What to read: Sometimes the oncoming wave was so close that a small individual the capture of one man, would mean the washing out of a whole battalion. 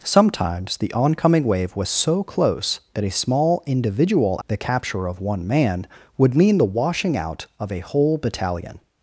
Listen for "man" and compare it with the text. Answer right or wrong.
right